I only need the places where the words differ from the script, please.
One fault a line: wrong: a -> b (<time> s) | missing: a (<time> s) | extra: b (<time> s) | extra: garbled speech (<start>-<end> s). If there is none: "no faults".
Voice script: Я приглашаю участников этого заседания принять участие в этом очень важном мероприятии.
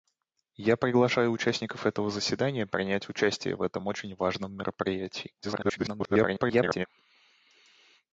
extra: garbled speech (5.4-6.9 s)